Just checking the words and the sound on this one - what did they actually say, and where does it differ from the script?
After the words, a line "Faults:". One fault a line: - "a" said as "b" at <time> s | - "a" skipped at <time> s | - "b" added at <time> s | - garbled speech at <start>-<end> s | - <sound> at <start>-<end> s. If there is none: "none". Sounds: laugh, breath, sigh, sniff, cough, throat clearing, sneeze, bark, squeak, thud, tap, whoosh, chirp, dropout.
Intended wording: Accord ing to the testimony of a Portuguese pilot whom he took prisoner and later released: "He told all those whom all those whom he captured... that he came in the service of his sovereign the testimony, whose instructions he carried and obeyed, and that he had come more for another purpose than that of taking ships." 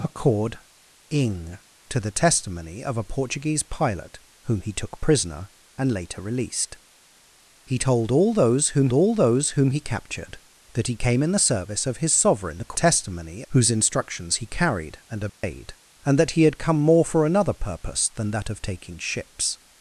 Accord ing to the testimony of a Portuguese pilot whom he took prisoner and later released: "He told all those whom all those whom he captured... that he came in the service of his sovereign the testimony, whose instructions he carried and obeyed, and that he had come more for another purpose than that of taking ships."
Faults:
- dropout at 15.3-15.4 s